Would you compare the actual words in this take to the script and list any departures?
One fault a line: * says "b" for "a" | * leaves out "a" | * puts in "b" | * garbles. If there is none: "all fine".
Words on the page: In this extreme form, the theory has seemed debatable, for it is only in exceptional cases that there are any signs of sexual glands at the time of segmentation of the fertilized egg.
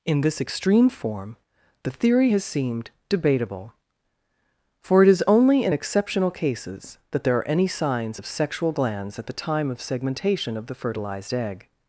all fine